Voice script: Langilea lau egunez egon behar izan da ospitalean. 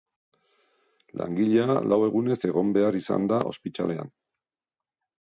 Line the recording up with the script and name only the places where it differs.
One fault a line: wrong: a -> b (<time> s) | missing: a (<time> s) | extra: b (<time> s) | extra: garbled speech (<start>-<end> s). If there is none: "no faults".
no faults